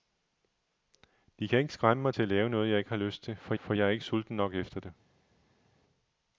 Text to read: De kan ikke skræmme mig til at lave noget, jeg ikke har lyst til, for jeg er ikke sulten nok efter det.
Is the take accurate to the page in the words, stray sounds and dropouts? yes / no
no